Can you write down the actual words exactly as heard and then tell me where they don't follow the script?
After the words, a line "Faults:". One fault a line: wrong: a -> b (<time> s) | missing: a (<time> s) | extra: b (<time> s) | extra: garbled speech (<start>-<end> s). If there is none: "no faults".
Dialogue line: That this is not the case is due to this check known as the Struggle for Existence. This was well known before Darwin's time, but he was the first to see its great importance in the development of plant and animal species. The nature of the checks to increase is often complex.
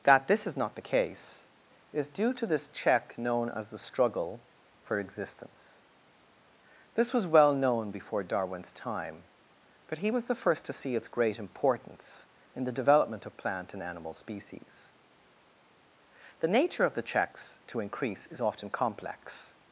That this is not the case is due to this check known as the Struggle for Existence. This was well known before Darwin's time, but he was the first to see its great importance in the development of plant and animal species. The nature of the checks to increase is often complex.
Faults:
no faults